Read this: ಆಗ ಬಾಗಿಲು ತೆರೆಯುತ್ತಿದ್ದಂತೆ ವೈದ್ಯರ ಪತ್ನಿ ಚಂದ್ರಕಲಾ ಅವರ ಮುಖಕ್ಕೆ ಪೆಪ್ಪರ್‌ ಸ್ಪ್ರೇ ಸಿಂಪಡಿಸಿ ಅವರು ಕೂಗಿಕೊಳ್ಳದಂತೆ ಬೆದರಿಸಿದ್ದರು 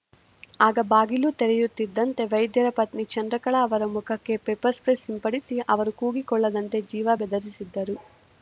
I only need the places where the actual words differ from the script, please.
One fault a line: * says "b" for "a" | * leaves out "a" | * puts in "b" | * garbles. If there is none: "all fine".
* puts in "ಜೀವ"